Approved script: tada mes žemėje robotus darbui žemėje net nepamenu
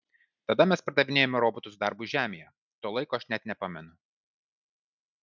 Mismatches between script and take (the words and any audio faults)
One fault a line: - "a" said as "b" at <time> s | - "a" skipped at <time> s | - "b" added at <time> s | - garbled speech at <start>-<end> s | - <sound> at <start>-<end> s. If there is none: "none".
- "žemėje" said as "pardavinėjome" at 0.9 s
- "to laiko aš" added at 2.9 s